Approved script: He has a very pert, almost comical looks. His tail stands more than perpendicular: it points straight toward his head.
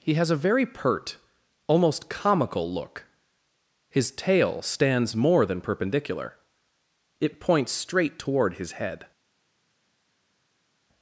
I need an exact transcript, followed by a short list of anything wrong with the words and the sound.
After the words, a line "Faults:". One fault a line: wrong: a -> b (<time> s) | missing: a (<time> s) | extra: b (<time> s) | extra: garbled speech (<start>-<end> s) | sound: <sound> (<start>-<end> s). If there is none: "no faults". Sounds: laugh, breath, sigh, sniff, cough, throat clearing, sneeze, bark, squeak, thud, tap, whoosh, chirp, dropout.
He has a very pert, almost comical look. His tail stands more than perpendicular: it points straight toward his head.
Faults:
wrong: looks -> look (2.7 s)